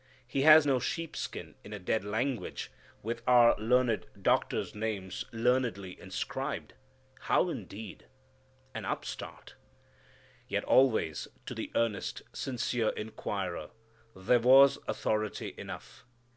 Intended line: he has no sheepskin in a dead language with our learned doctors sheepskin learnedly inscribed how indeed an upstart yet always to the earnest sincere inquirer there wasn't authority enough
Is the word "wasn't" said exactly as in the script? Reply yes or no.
no